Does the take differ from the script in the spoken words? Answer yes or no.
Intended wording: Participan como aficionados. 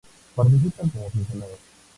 no